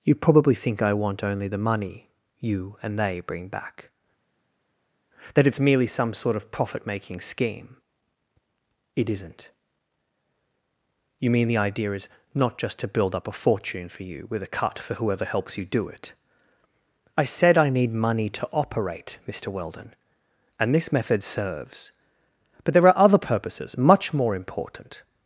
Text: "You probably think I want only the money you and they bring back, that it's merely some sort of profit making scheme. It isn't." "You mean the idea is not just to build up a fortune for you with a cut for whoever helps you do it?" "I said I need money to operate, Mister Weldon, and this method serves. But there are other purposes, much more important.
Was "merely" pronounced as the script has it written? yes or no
yes